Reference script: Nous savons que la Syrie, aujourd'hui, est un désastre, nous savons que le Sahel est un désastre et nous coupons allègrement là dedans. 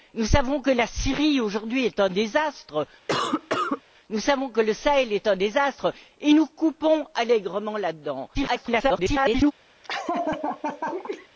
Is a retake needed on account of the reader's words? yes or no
yes